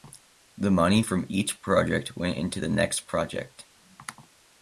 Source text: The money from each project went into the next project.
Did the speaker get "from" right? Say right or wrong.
right